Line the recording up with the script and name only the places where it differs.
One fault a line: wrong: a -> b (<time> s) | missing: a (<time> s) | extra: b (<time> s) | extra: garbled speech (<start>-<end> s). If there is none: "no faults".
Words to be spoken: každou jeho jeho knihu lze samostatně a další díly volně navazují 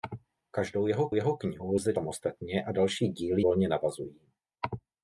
no faults